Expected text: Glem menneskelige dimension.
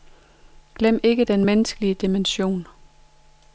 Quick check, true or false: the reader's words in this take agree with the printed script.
false